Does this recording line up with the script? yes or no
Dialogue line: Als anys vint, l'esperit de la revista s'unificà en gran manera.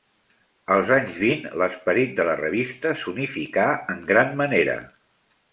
yes